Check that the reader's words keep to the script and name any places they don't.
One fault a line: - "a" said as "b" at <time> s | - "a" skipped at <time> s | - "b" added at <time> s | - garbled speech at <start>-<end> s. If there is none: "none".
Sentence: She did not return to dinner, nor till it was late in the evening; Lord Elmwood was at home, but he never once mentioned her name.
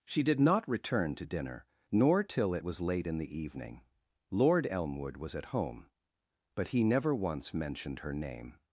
none